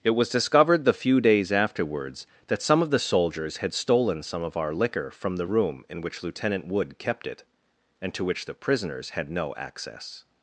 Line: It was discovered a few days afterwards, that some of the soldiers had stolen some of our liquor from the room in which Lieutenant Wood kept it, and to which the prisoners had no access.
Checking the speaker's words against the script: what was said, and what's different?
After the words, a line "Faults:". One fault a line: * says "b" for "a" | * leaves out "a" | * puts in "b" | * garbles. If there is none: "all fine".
It was discovered the few days afterwards, that some of the soldiers had stolen some of our liquor from the room in which Lieutenant Wood kept it, and to which the prisoners had no access.
Faults:
* says "the" for "a"